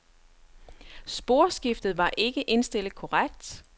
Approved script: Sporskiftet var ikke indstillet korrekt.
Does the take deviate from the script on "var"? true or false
false